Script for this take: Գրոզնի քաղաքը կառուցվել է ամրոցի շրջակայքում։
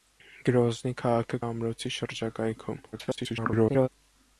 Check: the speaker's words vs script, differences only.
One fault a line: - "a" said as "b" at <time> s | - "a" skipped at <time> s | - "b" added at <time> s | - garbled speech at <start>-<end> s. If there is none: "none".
- "կառուցվել" skipped at 1.4 s
- garbled speech at 2.9-3.9 s